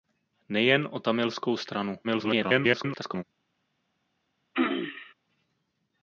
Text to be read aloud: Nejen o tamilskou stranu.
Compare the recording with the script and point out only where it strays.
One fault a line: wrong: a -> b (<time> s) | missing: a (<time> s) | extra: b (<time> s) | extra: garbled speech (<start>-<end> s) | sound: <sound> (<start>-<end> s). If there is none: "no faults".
extra: garbled speech (2.0-3.2 s)
sound: throat clearing (4.5-5.1 s)